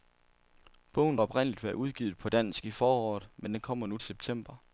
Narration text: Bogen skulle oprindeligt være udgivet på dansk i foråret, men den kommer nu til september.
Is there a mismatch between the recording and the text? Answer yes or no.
yes